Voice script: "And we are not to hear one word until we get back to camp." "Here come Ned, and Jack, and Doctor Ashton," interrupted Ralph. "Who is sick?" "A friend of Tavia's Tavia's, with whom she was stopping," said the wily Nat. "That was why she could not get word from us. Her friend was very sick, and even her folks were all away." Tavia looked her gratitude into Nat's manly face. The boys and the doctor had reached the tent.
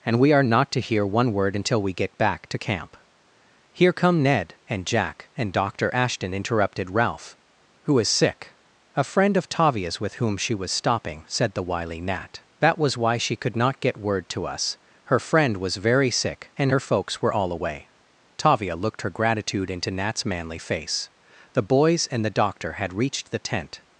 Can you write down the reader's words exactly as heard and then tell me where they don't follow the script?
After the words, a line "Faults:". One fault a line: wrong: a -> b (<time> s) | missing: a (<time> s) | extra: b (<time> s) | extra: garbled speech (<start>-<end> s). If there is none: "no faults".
"And we are not to hear one word until we get back to camp." "Here come Ned, and Jack, and Doctor Ashton," interrupted Ralph. "Who is sick?" "A friend of Tavia's, with whom she was stopping," said the wily Nat. "That was why she could not get word to us. Her friend was very sick, and her folks were all away." Tavia looked her gratitude into Nat's manly face. The boys and the doctor had reached the tent.
Faults:
missing: Tavia's (10.0 s)
wrong: from -> to (14.3 s)
missing: even (16.7 s)